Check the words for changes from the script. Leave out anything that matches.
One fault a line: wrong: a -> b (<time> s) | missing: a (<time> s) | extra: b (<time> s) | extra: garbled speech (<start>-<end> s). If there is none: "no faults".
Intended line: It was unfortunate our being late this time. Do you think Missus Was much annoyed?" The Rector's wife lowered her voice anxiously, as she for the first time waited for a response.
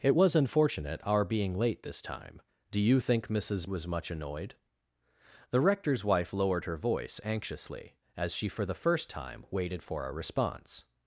no faults